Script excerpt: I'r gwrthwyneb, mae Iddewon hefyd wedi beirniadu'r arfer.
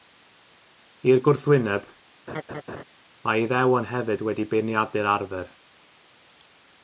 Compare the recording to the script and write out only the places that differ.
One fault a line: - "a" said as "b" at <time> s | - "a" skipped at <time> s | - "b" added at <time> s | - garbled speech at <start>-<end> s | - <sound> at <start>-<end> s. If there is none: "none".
- laugh at 2.3-2.8 s